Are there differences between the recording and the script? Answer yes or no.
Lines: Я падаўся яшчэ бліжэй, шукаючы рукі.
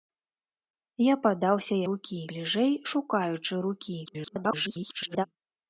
yes